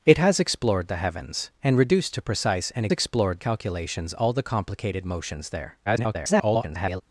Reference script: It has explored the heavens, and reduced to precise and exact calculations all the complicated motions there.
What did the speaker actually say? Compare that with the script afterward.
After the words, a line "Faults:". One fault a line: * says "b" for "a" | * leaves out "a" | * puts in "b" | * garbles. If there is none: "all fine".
It has explored the heavens, and reduced to precise and explored calculations all the complicated motions there. [garbled]
Faults:
* says "explored" for "exact"
* garbles